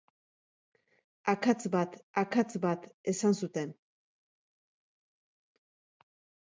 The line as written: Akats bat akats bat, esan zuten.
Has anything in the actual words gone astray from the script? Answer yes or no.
no